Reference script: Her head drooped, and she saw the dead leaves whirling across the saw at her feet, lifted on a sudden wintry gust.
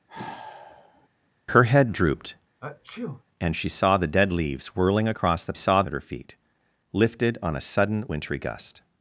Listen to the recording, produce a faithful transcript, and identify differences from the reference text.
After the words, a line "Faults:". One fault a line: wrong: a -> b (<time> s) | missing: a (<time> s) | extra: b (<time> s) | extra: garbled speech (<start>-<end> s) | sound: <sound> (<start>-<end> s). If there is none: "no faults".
Her head drooped, and she saw the dead leaves whirling across the saw at her feet, lifted on a sudden wintry gust.
Faults:
sound: sigh (0.1-1.1 s)
sound: sneeze (2.6-3.2 s)